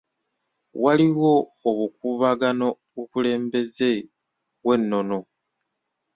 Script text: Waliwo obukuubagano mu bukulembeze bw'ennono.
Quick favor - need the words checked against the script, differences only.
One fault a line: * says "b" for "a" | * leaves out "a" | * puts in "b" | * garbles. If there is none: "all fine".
* leaves out "mu"